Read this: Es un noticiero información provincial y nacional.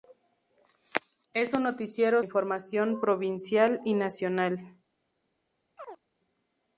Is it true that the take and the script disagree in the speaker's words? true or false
false